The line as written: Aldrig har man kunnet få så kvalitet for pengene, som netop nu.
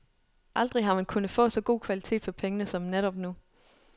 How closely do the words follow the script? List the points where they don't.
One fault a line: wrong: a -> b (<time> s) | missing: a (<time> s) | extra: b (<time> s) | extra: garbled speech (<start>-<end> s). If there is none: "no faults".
extra: god (1.6 s)